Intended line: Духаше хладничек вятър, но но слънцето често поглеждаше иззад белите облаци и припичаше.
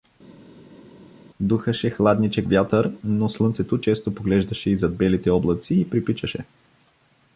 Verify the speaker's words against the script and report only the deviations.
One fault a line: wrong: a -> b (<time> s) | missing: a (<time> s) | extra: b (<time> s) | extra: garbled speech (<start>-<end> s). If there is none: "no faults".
missing: но (3.3 s)